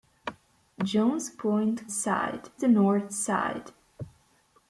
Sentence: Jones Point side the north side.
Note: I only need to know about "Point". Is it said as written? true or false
true